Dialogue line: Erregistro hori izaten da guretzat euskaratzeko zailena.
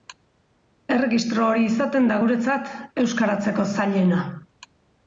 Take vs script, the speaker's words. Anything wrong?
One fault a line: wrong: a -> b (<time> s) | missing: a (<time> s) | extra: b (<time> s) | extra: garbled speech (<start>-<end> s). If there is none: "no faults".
no faults